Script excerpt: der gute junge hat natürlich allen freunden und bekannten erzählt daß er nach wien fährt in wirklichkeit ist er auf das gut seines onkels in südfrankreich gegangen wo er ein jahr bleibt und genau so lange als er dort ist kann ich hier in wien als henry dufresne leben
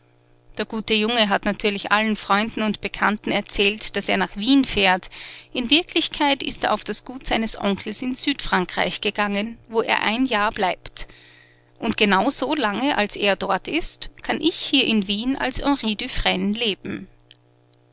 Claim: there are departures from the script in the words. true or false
false